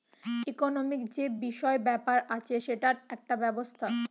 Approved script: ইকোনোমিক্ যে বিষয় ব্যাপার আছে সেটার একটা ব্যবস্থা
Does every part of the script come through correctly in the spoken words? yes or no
yes